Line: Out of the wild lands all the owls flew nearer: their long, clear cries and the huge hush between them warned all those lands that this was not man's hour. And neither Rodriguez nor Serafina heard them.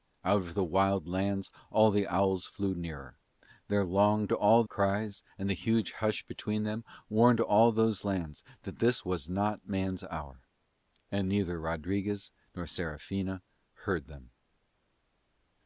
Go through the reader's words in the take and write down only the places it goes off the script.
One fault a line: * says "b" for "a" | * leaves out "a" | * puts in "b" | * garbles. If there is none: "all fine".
* says "all" for "clear"